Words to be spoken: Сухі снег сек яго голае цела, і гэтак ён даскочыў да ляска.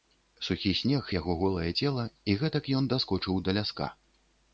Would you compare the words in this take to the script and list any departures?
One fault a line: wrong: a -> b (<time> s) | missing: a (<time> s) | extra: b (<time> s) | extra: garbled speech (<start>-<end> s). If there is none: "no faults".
missing: сек (1.1 s)